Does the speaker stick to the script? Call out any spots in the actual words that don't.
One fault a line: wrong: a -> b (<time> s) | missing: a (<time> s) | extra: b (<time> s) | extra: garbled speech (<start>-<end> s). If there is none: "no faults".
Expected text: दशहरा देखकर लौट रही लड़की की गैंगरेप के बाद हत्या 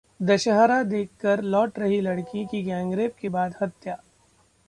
no faults